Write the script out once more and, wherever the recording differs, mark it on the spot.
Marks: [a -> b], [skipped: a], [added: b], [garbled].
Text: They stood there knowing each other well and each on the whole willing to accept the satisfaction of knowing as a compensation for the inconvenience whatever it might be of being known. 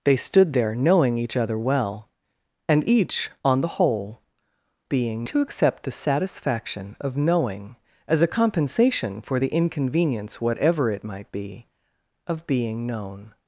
They stood there knowing each other well and each on the whole [willing -> being] to accept the satisfaction of knowing as a compensation for the inconvenience whatever it might be of being known.